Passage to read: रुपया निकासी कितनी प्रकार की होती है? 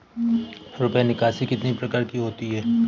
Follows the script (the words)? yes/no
yes